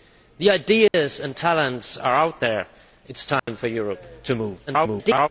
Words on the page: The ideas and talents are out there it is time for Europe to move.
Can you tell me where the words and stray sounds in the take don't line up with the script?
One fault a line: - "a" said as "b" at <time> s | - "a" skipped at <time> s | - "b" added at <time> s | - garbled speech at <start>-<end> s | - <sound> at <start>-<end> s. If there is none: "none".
- dropout at 0.9-0.9 s
- dropout at 3.4-3.5 s
- garbled speech at 4.7-5.3 s